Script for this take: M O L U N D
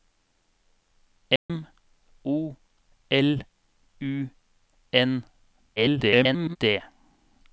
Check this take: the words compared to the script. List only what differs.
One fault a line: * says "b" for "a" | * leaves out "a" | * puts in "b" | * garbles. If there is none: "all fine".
* garbles